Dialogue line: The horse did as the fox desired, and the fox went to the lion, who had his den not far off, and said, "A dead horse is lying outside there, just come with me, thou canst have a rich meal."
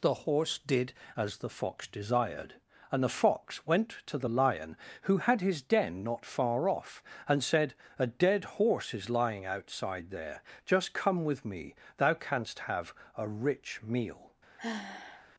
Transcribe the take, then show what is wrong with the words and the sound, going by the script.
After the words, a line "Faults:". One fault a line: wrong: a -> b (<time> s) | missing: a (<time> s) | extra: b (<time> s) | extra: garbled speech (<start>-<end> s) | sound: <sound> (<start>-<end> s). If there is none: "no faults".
The horse did as the fox desired, and the fox went to the lion, who had his den not far off, and said, "A dead horse is lying outside there, just come with me, thou canst have a rich meal."
Faults:
sound: sigh (14.6-15.3 s)